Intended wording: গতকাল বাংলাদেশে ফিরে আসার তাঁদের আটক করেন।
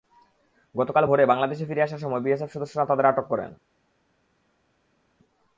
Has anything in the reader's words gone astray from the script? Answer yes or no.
yes